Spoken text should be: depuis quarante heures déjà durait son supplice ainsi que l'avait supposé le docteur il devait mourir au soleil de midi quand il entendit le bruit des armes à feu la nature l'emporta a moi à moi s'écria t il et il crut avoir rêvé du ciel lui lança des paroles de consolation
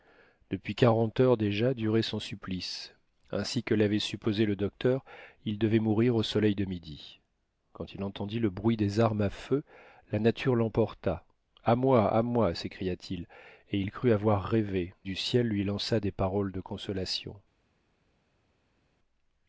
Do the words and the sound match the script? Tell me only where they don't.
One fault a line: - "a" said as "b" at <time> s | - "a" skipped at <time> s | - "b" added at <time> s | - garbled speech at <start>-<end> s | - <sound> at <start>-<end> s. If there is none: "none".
none